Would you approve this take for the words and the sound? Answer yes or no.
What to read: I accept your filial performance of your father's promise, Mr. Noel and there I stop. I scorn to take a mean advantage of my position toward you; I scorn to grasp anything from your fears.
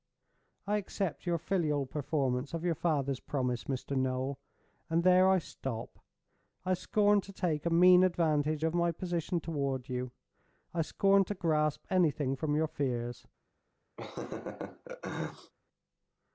no